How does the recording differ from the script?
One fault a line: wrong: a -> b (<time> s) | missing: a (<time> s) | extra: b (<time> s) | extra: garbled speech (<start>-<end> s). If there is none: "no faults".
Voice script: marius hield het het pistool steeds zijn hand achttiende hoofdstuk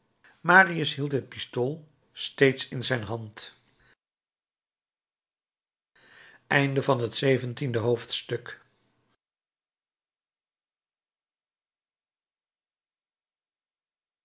missing: het (1.3 s)
extra: in (2.7 s)